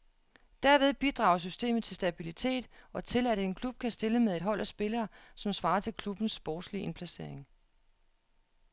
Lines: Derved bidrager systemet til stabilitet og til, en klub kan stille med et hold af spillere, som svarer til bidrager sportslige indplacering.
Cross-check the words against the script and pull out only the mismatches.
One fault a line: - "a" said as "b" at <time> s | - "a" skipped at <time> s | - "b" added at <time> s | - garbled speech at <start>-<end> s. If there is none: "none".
- "at" added at 3.3 s
- "bidrager" said as "klubbens" at 5.9 s